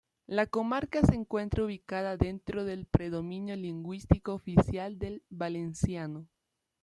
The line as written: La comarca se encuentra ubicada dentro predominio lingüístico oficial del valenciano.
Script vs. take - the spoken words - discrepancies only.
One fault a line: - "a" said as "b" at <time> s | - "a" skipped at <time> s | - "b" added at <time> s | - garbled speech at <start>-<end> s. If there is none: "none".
- "del" added at 2.6 s